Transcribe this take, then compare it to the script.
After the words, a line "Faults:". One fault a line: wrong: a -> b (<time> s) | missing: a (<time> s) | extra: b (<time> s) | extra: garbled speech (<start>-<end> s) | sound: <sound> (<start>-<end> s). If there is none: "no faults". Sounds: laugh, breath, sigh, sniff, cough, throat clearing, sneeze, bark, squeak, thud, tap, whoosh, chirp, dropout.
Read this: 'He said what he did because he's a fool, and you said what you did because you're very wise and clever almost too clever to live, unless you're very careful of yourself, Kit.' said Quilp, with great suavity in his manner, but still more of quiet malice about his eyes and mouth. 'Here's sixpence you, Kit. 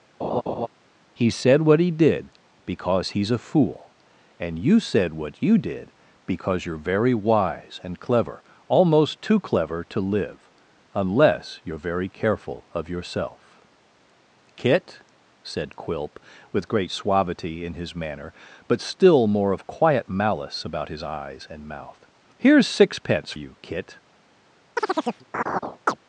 'He said what he did because he's a fool, and you said what you did because you're very wise and clever almost too clever to live, unless you're very careful of yourself, Kit.' said Quilp, with great suavity in his manner, but still more of quiet malice about his eyes and mouth. 'Here's sixpence you, Kit.
Faults:
sound: laugh (0.2-0.7 s)
sound: chirp (24.8-26.0 s)